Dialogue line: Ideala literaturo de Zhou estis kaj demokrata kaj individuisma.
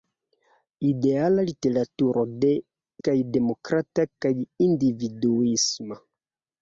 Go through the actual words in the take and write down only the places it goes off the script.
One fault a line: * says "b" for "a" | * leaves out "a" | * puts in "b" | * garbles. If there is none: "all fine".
* leaves out "Zhou estis"